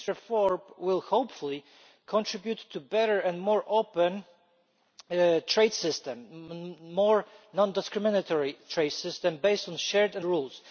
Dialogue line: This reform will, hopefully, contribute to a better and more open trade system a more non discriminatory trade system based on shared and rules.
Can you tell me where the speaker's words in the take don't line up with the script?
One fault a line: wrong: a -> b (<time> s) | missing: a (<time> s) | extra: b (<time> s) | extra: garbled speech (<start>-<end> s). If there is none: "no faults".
no faults